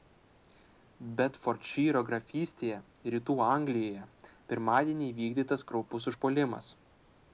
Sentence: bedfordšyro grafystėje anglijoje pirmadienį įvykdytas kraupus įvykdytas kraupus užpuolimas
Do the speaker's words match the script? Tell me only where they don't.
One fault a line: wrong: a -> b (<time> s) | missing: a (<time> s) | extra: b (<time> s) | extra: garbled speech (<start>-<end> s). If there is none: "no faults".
extra: rytų (3.1 s)
missing: įvykdytas kraupus (6.1 s)